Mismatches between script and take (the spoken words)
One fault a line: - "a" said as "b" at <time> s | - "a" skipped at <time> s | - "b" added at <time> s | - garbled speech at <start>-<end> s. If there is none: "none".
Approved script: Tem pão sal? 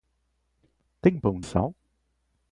none